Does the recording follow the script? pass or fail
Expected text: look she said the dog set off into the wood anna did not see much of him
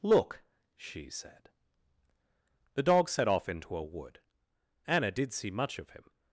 fail